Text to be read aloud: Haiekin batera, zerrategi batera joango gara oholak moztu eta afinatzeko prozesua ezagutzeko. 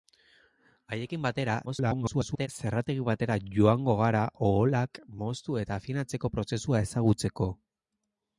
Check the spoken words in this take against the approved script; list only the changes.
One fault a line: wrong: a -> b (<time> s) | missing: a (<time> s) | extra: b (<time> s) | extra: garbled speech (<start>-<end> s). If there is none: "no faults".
extra: garbled speech (1.7-2.5 s)